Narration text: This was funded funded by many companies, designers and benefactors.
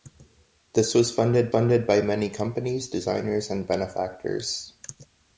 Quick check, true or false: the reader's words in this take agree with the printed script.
true